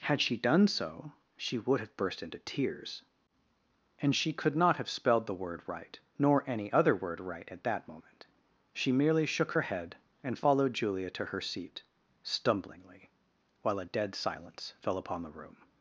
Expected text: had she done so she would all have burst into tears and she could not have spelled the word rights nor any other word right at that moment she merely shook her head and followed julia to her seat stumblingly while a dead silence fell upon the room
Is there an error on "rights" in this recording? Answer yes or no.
yes